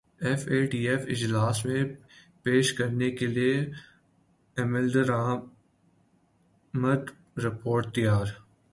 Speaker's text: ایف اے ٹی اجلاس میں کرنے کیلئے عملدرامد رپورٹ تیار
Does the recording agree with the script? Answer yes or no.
no